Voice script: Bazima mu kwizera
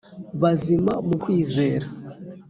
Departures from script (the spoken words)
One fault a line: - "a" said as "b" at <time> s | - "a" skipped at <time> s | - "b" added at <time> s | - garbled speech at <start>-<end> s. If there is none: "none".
none